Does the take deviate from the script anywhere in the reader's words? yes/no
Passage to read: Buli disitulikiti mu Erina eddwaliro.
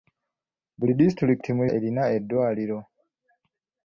no